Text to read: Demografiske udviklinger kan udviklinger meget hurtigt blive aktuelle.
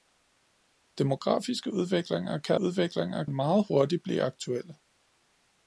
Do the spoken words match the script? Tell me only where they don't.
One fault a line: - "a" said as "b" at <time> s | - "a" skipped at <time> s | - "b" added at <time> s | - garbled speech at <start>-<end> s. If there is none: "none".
none